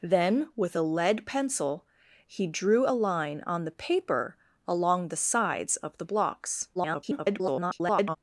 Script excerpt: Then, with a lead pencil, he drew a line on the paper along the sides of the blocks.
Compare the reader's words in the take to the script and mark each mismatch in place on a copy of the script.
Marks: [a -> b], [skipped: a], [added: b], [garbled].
Then, with a lead pencil, he drew a line on the paper along the sides of the blocks. [garbled]